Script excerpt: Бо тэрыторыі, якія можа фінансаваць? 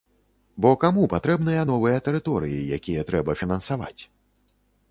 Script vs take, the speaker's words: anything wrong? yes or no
yes